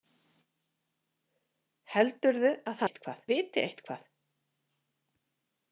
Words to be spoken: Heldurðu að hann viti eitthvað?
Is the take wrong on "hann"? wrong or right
wrong